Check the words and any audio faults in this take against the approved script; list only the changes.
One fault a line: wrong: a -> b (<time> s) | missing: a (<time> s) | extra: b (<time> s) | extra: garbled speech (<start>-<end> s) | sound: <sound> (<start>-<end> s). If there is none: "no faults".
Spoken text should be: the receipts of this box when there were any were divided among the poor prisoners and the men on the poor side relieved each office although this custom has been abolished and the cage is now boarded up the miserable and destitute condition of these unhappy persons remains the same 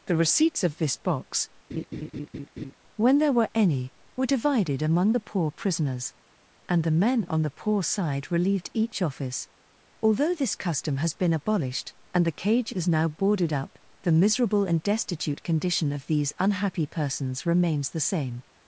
sound: laugh (1.7-2.7 s)